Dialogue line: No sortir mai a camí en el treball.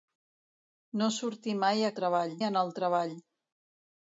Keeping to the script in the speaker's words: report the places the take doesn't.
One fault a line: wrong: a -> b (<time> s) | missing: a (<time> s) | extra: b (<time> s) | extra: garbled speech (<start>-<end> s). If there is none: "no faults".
wrong: camí -> treball (2.0 s)